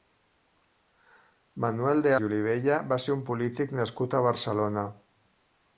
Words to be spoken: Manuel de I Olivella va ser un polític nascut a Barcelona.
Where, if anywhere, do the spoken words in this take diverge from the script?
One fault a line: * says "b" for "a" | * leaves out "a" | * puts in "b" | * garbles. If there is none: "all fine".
all fine